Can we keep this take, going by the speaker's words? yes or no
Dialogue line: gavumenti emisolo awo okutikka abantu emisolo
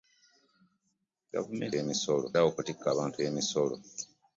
yes